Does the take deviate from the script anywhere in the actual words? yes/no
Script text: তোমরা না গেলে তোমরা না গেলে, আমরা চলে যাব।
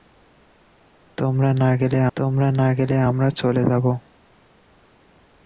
no